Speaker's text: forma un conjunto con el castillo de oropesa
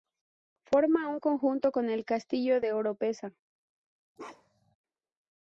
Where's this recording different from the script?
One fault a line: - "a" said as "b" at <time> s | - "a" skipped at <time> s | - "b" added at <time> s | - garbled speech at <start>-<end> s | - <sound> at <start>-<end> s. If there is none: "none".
- bark at 4.2-4.8 s